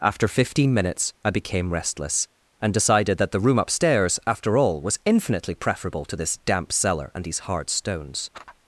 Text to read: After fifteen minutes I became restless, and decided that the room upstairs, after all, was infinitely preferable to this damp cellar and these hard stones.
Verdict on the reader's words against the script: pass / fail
pass